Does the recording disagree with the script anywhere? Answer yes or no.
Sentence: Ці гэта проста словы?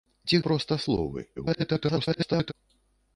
yes